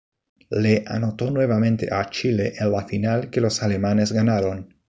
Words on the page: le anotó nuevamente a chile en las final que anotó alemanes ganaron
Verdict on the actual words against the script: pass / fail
fail